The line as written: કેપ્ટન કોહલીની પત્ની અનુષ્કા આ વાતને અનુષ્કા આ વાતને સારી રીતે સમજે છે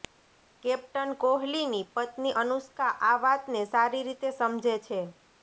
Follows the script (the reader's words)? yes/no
no